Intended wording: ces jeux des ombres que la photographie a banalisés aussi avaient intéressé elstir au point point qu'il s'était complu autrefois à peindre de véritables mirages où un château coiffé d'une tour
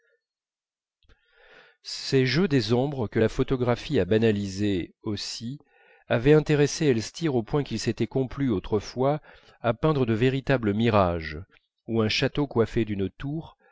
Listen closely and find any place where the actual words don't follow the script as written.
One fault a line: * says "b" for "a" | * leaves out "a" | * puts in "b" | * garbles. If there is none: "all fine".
* leaves out "point"